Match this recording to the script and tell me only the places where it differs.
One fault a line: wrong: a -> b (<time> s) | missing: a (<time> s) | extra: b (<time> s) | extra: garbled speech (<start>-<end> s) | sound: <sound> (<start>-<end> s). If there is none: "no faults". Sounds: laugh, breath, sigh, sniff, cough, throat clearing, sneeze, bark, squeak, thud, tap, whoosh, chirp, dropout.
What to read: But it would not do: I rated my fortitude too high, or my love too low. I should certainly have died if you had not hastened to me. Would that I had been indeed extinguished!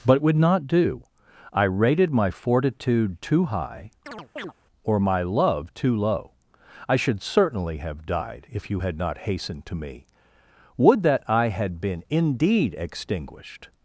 missing: it (0.2 s)
sound: chirp (4.1-4.5 s)